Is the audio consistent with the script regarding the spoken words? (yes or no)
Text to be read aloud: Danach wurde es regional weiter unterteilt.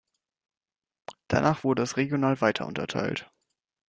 yes